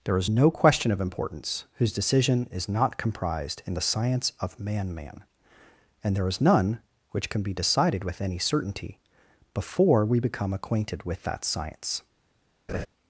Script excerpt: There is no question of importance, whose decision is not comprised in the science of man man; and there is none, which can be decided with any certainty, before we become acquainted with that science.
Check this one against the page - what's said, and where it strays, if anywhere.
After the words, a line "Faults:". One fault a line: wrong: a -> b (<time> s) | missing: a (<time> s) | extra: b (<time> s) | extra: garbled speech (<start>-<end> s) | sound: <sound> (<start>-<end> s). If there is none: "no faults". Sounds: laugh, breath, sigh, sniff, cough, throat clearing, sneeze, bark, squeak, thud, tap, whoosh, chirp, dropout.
There is no question of importance, whose decision is not comprised in the science of man man; and there is none, which can be decided with any certainty, before we become acquainted with that science.
Faults:
sound: laugh (12.7-12.9 s)